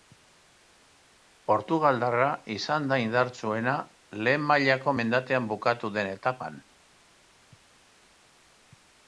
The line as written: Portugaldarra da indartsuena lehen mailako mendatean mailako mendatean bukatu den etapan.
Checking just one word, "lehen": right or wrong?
right